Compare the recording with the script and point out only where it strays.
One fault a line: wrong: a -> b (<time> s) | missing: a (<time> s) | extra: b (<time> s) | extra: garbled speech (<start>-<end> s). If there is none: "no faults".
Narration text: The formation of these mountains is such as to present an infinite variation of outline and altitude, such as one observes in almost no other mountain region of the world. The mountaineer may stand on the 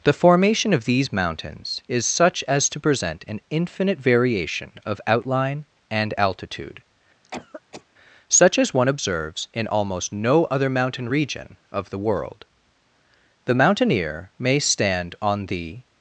no faults